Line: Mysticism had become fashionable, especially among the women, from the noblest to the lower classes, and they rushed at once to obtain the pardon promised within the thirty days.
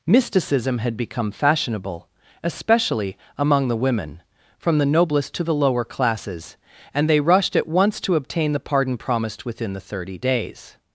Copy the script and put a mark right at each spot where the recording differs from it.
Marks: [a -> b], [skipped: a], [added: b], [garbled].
Mysticism had become fashionable, especially among the women, from the noblest to the lower classes, and they rushed at once to obtain the pardon promised within the thirty days.